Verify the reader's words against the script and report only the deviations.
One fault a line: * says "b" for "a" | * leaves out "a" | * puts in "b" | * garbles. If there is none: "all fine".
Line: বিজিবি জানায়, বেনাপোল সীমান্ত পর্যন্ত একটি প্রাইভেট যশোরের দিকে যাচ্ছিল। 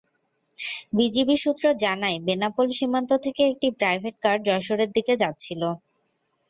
* puts in "সূত্র"
* says "থেকে" for "পর্যন্ত"
* puts in "কার"